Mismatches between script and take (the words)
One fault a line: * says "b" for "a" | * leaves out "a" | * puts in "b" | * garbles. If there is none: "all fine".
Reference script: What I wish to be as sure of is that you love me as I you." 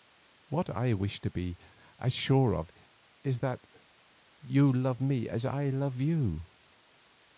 * puts in "love"